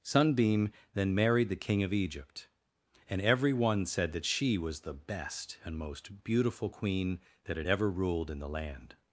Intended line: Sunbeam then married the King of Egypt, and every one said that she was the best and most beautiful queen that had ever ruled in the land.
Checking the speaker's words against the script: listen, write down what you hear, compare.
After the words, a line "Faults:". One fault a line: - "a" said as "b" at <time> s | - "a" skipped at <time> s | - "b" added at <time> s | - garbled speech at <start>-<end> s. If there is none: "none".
Sunbeam then married the King of Egypt, and every one said that she was the best and most beautiful queen that had ever ruled in the land.
Faults:
none